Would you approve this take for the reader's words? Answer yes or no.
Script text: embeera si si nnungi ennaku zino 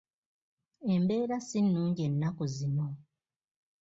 no